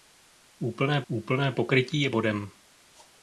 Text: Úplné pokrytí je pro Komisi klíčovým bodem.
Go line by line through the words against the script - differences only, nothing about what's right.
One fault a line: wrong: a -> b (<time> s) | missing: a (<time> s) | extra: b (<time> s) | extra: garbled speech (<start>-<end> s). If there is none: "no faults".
extra: úplné (1.1 s)
missing: pro Komisi klíčovým (2.1 s)